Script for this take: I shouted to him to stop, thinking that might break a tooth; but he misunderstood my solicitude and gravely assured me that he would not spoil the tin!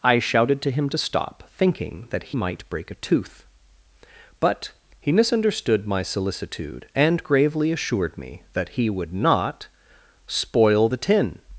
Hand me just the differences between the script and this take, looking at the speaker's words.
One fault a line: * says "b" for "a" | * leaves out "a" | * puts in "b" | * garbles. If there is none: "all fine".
all fine